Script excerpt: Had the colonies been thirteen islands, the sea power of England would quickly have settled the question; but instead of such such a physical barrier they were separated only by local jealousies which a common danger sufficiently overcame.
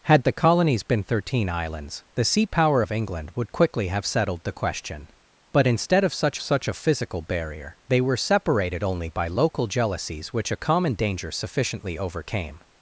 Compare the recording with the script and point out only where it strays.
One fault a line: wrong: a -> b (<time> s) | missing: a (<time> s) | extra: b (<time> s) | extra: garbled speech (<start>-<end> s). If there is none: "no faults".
no faults